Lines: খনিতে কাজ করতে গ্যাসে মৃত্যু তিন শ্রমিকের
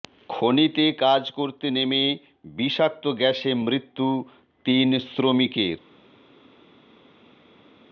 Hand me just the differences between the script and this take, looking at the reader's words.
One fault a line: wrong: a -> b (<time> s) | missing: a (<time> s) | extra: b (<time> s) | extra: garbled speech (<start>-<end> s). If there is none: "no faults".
extra: নেমে বিষাক্ত (1.7 s)